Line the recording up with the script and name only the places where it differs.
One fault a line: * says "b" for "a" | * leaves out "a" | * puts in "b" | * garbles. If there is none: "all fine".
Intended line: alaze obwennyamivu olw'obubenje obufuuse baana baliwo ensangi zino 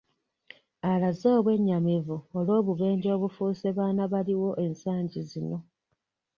all fine